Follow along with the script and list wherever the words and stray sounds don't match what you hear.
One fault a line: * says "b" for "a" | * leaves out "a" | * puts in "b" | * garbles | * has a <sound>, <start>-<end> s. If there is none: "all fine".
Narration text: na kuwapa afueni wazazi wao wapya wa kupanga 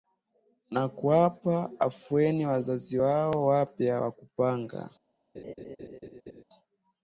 * has a laugh, 5.3-6.4 s